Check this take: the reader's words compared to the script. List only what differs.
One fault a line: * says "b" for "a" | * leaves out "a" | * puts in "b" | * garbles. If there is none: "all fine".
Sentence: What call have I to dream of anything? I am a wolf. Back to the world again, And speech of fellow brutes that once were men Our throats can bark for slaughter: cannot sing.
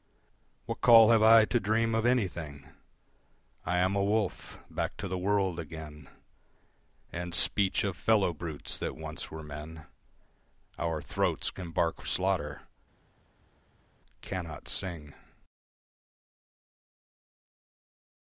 * leaves out "for"